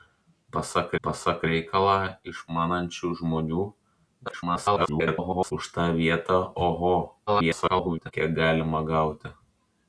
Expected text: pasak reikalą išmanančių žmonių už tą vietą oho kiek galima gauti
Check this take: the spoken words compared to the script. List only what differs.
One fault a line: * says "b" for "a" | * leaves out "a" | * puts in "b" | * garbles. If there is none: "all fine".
* puts in "pasak"
* garbles
* garbles